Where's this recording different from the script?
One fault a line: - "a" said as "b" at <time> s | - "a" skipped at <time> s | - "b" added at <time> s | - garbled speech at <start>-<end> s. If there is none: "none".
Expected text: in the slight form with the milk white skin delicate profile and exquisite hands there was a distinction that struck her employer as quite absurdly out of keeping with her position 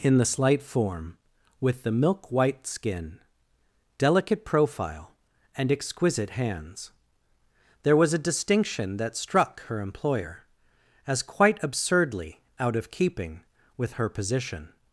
none